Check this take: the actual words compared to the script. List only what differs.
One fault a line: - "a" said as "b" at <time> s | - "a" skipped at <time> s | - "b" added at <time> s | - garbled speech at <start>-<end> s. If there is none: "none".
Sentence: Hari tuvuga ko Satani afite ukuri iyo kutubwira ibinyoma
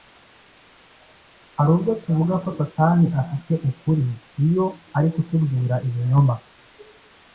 - "ubwo" added at 1.8 s
- "ari" added at 5.0 s